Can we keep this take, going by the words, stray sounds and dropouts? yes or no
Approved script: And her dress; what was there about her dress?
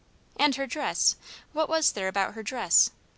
yes